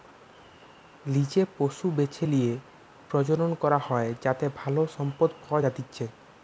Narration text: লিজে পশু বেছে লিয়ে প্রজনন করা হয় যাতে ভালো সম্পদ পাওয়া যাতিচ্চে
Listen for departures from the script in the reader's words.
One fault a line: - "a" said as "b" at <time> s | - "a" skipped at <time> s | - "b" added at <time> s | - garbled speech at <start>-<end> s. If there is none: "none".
none